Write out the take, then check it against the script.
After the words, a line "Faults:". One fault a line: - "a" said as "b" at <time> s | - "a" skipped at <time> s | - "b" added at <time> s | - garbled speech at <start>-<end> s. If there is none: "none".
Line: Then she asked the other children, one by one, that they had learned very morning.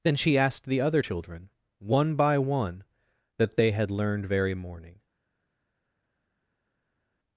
Then she asked the other children, one by one, that they had learned very morning.
Faults:
none